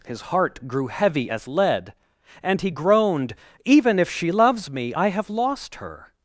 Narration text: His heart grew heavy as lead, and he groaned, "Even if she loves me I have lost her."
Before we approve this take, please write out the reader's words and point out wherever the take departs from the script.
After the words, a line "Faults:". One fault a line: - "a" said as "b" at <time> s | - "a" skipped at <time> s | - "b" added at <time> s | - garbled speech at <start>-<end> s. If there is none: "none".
His heart grew heavy as lead, and he groaned, "Even if she loves me I have lost her."
Faults:
none